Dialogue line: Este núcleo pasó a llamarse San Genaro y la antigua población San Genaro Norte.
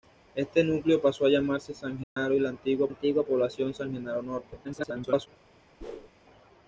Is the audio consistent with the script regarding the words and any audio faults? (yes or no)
no